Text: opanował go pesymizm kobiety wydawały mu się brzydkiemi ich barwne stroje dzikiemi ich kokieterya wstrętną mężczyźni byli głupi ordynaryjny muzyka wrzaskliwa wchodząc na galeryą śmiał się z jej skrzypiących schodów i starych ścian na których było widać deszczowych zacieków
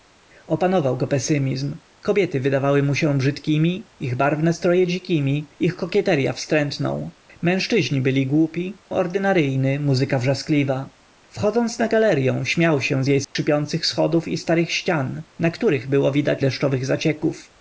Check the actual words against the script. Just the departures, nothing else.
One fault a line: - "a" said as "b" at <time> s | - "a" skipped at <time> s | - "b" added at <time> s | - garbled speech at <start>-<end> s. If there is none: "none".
none